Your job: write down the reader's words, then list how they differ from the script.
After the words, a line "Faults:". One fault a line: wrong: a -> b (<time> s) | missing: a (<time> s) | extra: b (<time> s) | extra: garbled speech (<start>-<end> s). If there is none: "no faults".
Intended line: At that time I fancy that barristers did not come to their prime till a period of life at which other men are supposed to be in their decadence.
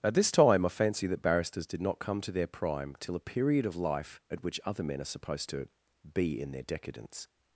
At this time I fancy that barristers did not come to their prime till a period of life at which other men are supposed to be in their decadence.
Faults:
wrong: that -> this (0.1 s)